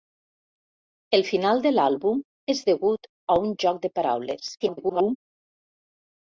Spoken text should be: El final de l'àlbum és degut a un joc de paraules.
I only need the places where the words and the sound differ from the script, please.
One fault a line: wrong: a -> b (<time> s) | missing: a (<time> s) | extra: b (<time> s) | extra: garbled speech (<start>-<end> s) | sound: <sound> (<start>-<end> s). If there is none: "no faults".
extra: garbled speech (4.6-5.2 s)